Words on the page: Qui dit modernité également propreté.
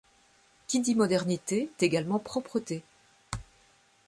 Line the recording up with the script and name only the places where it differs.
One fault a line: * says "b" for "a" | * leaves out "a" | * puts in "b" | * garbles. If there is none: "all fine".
all fine